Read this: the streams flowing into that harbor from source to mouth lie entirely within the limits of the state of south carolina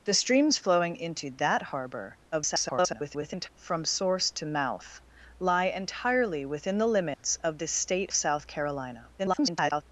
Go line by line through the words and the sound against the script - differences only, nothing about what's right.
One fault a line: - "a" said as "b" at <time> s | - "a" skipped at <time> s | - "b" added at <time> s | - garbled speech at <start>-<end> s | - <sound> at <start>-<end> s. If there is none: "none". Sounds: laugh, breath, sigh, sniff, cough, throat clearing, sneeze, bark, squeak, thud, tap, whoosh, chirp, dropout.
- garbled speech at 2.3-3.5 s
- dropout at 7.1-7.2 s
- "of" skipped at 8.1 s
- garbled speech at 9.2-9.8 s